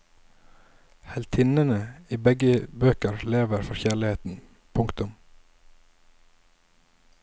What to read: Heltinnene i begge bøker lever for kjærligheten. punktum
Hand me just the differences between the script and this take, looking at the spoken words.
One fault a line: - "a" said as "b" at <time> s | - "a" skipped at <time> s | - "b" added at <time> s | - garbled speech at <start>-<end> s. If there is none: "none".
none